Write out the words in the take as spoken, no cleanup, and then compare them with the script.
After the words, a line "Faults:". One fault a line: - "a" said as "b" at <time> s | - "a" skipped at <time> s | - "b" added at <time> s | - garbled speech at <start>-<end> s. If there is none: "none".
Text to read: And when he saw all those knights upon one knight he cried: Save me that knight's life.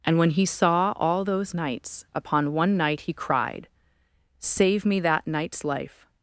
And when he saw all those knights upon one knight he cried: Save me that knight's life.
Faults:
none